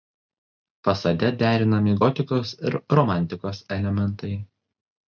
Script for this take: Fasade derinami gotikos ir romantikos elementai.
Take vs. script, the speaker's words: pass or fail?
pass